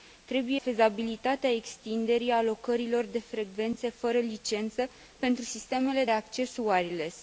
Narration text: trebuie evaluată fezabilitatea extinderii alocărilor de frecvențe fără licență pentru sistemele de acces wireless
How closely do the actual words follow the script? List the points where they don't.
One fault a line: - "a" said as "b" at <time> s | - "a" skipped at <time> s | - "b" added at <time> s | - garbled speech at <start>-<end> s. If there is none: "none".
- "evaluată" skipped at 0.6 s
- "de" skipped at 6.0 s